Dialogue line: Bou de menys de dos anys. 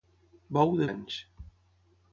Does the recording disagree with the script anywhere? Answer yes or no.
yes